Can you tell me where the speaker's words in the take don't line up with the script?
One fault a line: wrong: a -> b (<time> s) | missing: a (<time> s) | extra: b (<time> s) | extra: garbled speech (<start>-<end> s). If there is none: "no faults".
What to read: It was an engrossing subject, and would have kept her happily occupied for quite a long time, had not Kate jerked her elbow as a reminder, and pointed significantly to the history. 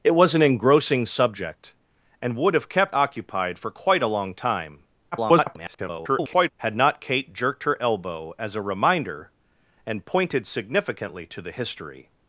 missing: her happily (3.0 s)
extra: garbled speech (5.1-6.5 s)